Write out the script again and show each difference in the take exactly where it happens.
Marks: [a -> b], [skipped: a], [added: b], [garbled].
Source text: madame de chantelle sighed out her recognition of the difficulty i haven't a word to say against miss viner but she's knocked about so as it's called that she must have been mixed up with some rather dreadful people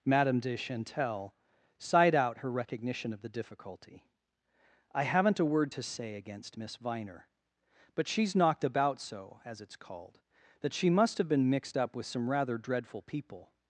madame de chantelle sighed out her recognition of the difficulty i haven't a word to say against miss viner but she's knocked about so as it's called that she must have been mixed up with some rather dreadful people